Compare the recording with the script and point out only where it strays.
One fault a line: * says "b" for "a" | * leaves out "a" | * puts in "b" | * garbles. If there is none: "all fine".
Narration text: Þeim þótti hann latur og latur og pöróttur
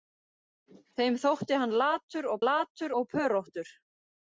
all fine